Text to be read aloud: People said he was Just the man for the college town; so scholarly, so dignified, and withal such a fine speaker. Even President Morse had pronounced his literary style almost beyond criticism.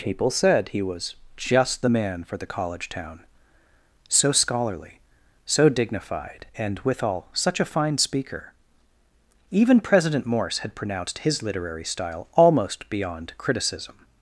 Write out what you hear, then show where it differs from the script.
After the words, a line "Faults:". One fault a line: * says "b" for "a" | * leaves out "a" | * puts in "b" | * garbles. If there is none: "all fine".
People said he was Just the man for the college town; so scholarly, so dignified, and withal such a fine speaker. Even President Morse had pronounced his literary style almost beyond criticism.
Faults:
all fine